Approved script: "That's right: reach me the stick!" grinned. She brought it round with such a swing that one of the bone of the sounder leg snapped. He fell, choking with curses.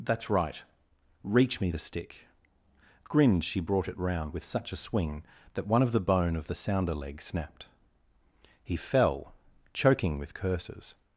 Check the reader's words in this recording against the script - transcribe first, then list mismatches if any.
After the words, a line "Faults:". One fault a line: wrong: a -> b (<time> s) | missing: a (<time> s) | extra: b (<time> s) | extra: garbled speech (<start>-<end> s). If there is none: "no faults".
"That's right: reach me the stick!" grinned. She brought it round with such a swing that one of the bone of the sounder leg snapped. He fell, choking with curses.
Faults:
no faults